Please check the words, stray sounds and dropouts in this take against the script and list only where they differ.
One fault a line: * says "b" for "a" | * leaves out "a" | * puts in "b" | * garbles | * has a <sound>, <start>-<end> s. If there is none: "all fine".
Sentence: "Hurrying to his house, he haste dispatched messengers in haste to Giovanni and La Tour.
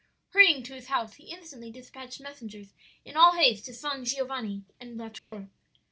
* says "instantly" for "haste"
* puts in "all"
* puts in "San"
* has a dropout, 5.2-5.3 s